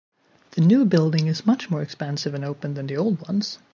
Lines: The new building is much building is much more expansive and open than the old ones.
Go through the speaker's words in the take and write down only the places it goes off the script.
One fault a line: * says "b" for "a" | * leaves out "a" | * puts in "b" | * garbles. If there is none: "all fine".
* leaves out "building is much"